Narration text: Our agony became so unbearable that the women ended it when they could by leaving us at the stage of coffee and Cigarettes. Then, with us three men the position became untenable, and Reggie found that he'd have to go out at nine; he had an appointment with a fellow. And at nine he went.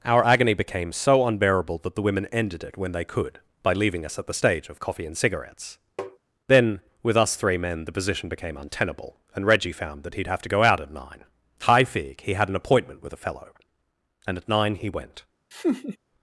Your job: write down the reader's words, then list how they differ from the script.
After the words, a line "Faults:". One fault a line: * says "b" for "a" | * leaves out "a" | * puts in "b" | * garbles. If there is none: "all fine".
Our agony became so unbearable that the women ended it when they could by leaving us at the stage of coffee and Cigarettes. Then, with us three men the position became untenable, and Reggie found that he'd have to go out at nine; high fig he had an appointment with a fellow. And at nine he went.
Faults:
* puts in "high fig"